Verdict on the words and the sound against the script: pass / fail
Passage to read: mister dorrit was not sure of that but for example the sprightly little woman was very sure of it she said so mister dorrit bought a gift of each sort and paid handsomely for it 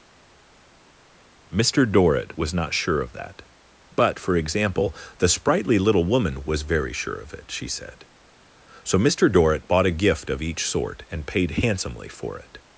pass